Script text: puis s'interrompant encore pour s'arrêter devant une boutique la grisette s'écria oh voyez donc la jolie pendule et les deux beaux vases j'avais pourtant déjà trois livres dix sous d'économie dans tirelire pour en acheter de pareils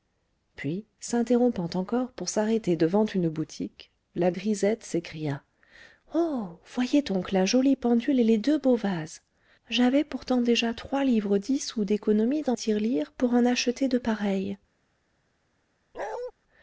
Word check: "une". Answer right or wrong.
right